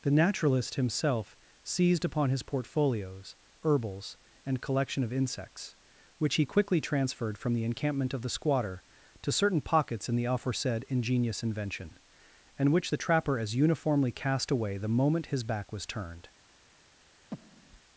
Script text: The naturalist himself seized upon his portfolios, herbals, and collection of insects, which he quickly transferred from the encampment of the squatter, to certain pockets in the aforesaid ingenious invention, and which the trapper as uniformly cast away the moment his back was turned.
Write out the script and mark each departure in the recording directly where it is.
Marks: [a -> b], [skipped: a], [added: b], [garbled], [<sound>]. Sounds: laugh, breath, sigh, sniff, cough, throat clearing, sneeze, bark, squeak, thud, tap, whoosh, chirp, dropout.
The naturalist himself seized upon his portfolios, herbals, and collection of insects, which he quickly transferred from the encampment of the squatter, to certain pockets in the aforesaid ingenious invention, and which the trapper as uniformly cast away the moment his back was turned. [breath]